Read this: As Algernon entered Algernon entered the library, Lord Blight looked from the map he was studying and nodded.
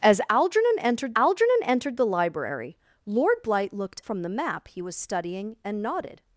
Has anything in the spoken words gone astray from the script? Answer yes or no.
no